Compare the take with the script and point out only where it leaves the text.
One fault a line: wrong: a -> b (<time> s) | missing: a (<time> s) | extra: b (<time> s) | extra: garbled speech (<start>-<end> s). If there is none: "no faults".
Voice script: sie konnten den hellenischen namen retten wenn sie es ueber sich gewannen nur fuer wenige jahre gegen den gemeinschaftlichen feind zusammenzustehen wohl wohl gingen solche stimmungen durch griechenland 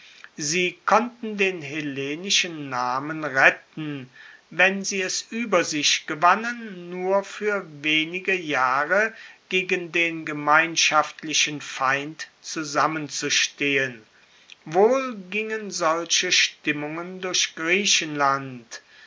missing: wohl (15.2 s)